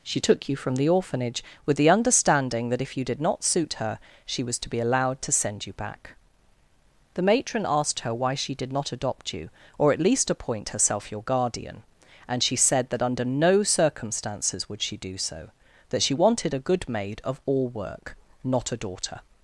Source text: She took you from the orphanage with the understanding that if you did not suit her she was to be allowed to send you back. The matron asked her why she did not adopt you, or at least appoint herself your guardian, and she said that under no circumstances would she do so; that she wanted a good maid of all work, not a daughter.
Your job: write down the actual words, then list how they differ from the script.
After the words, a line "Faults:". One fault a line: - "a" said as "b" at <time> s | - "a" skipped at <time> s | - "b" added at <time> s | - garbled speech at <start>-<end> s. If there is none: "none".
She took you from the orphanage with the understanding that if you did not suit her she was to be allowed to send you back. The matron asked her why she did not adopt you, or at least appoint herself your guardian, and she said that under no circumstances would she do so; that she wanted a good maid of all work, not a daughter.
Faults:
none